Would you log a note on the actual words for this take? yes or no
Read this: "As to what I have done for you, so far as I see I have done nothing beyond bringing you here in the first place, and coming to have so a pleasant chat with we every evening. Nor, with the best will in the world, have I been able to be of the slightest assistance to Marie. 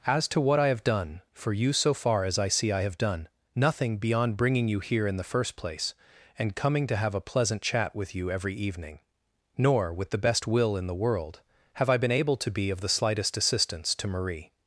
yes